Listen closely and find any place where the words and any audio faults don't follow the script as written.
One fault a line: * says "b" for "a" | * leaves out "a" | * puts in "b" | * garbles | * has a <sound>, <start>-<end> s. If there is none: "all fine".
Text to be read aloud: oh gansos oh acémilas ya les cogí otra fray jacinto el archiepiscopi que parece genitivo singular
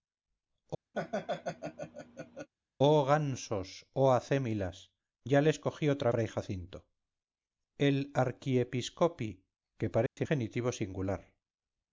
* has a laugh, 0.9-2.5 s
* has a dropout, 10.1-10.2 s